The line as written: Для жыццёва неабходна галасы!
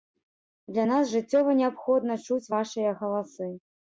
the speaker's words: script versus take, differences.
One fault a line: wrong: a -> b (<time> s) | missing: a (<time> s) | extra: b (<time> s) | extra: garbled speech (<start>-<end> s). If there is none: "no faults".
extra: нас (0.9 s)
extra: чуць вашыя (2.3 s)